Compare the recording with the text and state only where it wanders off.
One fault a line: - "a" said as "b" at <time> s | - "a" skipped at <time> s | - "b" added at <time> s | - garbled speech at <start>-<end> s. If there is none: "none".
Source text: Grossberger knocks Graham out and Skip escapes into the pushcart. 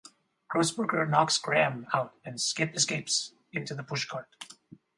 none